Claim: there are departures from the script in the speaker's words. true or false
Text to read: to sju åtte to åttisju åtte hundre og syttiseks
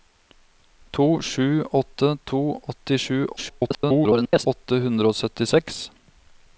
true